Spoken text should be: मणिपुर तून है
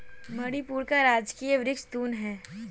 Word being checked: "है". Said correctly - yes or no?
yes